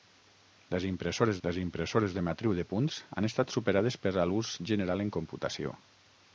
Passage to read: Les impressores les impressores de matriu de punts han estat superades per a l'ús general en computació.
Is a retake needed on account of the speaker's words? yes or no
no